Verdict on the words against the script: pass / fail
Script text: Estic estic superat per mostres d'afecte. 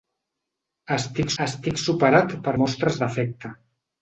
pass